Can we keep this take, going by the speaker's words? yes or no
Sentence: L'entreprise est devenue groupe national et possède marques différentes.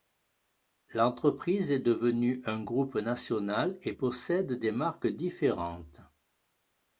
no